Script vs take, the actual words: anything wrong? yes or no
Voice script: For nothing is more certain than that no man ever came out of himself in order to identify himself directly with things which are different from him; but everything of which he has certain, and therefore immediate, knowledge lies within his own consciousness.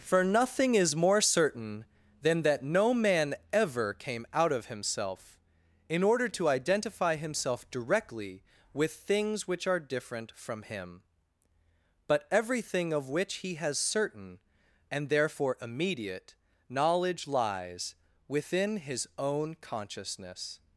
no